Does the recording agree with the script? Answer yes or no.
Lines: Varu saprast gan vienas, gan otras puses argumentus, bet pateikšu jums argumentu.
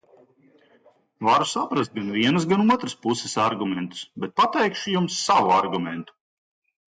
no